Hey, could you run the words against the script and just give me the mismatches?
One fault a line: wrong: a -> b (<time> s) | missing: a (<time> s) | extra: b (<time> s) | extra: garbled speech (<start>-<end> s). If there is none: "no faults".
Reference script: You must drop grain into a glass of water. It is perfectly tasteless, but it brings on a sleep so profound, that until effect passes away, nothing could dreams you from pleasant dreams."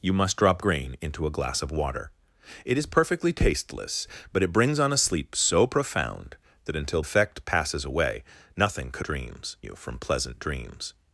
no faults